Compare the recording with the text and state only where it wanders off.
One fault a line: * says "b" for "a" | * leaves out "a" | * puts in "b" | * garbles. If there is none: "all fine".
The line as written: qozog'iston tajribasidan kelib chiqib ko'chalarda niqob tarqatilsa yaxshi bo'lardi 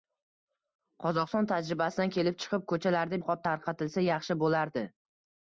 all fine